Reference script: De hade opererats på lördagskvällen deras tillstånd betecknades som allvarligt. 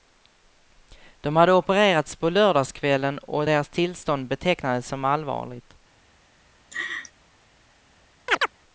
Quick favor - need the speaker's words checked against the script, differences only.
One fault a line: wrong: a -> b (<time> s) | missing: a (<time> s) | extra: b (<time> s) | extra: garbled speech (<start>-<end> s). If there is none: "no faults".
extra: och (3.2 s)